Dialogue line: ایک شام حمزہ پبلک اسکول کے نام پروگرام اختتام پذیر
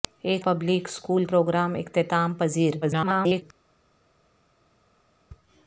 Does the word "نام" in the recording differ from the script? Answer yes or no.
yes